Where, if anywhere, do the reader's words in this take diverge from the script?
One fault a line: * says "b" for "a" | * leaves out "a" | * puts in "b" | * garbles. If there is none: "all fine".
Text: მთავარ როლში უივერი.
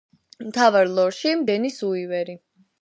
* puts in "დენის"